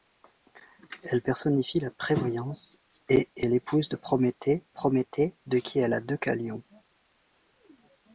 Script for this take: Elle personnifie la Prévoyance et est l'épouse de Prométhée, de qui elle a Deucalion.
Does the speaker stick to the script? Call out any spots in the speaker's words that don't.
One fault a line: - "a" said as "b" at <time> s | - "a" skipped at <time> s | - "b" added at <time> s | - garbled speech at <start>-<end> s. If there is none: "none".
- "Prométhée" added at 4.7 s